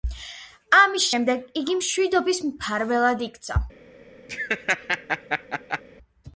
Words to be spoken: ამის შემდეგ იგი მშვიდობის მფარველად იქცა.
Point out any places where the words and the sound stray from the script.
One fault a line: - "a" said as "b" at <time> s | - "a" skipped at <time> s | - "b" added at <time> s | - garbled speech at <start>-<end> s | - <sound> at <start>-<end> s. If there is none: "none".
- laugh at 4.3-5.8 s